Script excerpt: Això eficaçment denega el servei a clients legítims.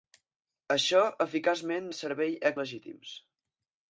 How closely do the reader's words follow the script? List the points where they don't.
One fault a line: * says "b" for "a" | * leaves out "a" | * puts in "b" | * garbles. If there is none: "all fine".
* leaves out "denega"
* leaves out "clients"